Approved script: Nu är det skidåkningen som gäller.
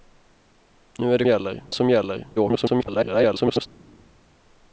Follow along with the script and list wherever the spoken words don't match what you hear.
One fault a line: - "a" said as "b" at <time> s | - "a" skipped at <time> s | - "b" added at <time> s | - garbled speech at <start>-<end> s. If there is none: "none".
- "skidåkningen" said as "gäller" at 1.3 s
- garbled speech at 2.4-3.7 s